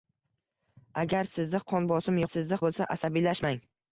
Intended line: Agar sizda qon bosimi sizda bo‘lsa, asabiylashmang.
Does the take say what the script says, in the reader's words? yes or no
yes